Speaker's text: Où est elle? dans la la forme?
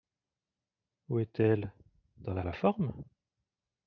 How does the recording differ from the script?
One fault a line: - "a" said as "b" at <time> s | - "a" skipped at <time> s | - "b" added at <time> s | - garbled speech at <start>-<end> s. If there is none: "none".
none